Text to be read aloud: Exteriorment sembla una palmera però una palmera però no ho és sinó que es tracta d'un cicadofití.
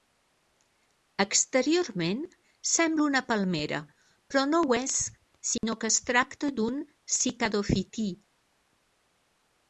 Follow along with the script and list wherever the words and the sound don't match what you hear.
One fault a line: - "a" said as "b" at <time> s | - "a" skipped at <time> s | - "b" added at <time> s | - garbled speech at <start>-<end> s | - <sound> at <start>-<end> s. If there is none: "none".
- "una palmera però" skipped at 4.4 s
- dropout at 5.6-5.6 s